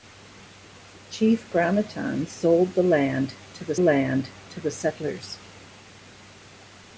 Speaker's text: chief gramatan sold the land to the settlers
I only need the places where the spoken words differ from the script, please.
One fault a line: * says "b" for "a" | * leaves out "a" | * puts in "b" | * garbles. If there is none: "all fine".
* puts in "land to the"